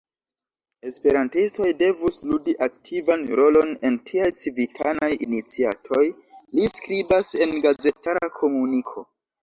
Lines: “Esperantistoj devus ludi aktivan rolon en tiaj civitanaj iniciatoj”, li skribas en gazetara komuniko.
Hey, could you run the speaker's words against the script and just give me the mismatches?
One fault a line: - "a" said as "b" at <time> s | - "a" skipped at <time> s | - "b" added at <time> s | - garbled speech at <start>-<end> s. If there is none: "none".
none